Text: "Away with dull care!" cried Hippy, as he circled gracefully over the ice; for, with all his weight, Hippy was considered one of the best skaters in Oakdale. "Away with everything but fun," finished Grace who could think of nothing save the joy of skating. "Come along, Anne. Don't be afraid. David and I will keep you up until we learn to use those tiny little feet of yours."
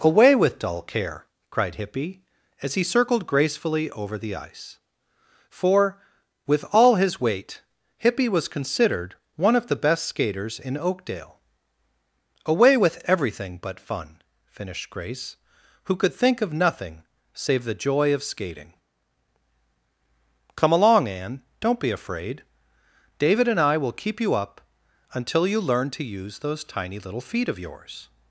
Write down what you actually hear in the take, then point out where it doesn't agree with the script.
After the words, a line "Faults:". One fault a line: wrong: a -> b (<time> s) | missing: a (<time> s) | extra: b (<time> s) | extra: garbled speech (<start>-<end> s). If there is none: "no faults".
"Away with dull care!" cried Hippy, as he circled gracefully over the ice; for, with all his weight, Hippy was considered one of the best skaters in Oakdale. "Away with everything but fun," finished Grace who could think of nothing save the joy of skating. "Come along, Anne. Don't be afraid. David and I will keep you up until you learn to use those tiny little feet of yours."
Faults:
wrong: we -> you (25.4 s)